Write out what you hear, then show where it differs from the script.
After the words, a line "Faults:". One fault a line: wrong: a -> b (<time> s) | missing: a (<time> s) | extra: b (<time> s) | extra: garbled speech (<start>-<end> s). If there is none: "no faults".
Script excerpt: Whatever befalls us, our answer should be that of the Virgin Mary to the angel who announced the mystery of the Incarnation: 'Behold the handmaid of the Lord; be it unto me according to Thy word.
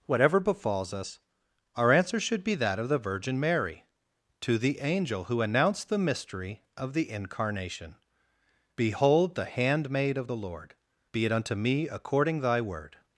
Whatever befalls us, our answer should be that of the Virgin Mary to the angel who announced the mystery of the Incarnation: 'Behold the handmaid of the Lord; be it unto me according Thy word.
Faults:
missing: to (12.4 s)